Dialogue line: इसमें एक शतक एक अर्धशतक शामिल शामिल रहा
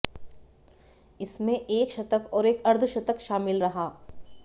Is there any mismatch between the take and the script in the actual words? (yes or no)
yes